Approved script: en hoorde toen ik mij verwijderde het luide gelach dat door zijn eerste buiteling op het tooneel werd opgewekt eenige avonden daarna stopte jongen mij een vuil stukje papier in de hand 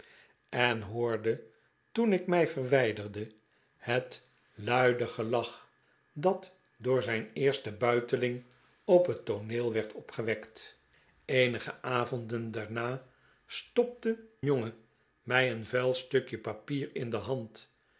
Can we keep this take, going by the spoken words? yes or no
yes